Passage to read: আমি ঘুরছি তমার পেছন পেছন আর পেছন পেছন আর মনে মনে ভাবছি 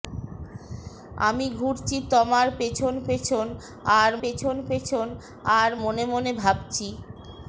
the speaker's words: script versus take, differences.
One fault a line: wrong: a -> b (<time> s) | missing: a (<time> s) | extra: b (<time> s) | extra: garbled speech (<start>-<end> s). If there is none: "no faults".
no faults